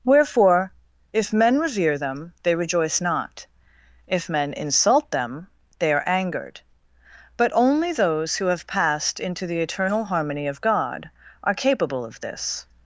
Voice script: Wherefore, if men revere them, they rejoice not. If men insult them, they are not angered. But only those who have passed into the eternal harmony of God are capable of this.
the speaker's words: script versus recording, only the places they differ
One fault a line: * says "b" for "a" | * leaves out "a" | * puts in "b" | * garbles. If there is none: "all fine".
* leaves out "not"